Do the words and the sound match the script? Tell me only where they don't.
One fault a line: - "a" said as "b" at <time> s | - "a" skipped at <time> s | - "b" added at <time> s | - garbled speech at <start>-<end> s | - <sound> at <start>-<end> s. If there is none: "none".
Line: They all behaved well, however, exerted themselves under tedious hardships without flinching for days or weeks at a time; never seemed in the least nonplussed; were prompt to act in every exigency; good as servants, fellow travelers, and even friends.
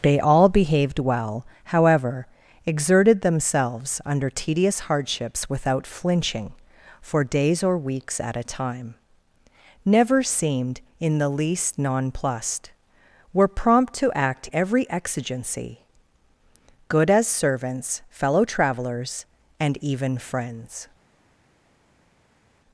- "in" skipped at 14.5 s